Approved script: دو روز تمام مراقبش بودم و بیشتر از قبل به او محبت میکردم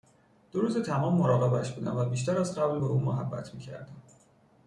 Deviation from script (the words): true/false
false